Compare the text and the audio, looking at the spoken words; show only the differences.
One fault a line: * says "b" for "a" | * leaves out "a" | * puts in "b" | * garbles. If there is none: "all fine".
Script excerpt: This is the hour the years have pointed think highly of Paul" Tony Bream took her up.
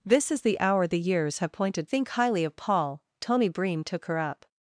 all fine